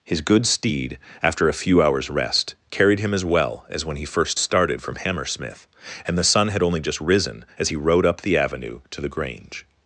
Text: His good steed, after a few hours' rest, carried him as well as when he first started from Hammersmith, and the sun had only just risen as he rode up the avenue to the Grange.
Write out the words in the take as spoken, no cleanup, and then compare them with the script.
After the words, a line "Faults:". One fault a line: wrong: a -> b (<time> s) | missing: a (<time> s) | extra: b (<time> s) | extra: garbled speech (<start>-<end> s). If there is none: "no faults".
His good steed, after a few hours' rest, carried him as well as when he first started from Hammersmith, and the sun had only just risen as he rode up the avenue to the Grange.
Faults:
no faults